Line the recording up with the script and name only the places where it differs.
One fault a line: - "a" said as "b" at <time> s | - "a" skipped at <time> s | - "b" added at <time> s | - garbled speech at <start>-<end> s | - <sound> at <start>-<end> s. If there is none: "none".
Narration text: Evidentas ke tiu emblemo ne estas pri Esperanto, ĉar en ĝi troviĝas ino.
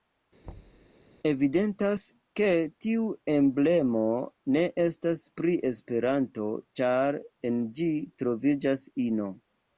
- thud at 0.4-0.9 s